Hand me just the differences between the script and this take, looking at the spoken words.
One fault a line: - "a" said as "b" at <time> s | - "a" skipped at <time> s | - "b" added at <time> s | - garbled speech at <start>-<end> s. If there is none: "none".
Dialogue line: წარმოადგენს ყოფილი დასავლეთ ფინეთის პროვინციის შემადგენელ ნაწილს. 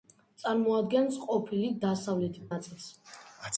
- "ფინეთის პროვინციის შემადგენელ" skipped at 2.4 s